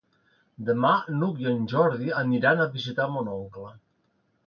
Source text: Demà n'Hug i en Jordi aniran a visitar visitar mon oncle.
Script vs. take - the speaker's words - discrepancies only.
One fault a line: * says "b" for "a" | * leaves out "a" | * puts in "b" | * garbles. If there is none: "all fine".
* leaves out "visitar"